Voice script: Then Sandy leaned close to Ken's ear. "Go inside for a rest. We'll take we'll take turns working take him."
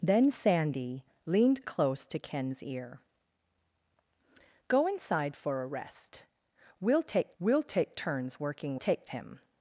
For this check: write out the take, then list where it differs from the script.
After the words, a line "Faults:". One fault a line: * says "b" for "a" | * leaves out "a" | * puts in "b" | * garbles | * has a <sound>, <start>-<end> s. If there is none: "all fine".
Then Sandy leaned close to Ken's ear. "Go inside for a rest. We'll take we'll take turns working take him."
Faults:
all fine